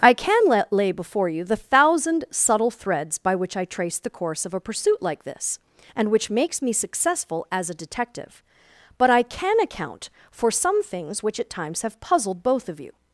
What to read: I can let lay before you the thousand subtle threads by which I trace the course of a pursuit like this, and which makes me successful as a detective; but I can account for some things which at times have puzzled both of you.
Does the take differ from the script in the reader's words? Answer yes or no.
no